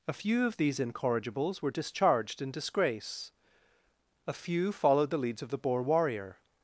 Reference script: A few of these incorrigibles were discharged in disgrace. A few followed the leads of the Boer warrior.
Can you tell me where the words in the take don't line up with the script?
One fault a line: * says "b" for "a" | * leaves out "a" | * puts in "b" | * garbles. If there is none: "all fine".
all fine